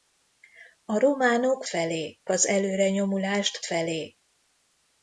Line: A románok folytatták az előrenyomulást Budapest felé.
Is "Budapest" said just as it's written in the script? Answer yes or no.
no